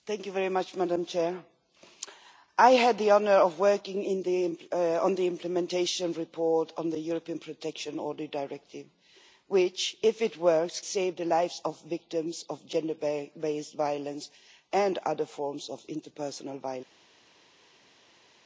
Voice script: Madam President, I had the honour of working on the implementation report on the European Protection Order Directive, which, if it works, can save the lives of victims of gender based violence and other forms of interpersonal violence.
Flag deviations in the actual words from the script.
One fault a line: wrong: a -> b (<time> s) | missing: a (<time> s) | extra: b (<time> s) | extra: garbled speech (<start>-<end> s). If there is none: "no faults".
missing: can (10.8 s)